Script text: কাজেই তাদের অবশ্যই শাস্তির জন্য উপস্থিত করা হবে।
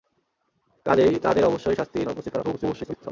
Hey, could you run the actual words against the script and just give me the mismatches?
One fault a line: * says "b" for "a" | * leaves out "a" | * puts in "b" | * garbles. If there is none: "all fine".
* leaves out "জন্য"
* garbles